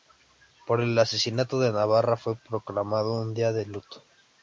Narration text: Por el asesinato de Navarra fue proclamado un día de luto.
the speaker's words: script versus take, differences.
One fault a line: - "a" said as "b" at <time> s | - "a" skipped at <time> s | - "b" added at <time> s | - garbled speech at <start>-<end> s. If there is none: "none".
none